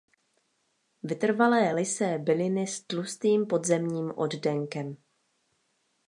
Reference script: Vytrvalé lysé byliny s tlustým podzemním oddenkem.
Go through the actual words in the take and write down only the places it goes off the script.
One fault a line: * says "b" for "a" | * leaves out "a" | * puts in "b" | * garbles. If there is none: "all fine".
all fine